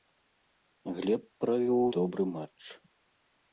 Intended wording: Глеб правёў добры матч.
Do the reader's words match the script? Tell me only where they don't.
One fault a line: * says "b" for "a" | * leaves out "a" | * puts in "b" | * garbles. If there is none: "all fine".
all fine